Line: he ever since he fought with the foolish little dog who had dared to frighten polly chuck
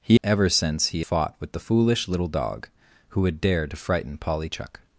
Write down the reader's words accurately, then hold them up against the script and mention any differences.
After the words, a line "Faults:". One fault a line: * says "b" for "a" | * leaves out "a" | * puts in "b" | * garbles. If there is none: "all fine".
he ever since he fought with the foolish little dog who had dared to frighten polly chuck
Faults:
all fine